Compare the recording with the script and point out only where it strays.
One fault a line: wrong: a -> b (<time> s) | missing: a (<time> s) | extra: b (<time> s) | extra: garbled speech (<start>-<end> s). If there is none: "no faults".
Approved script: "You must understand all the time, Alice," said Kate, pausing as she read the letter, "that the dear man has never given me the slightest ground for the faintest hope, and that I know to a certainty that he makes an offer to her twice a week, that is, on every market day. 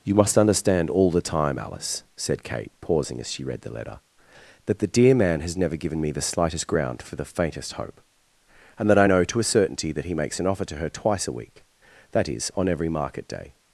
no faults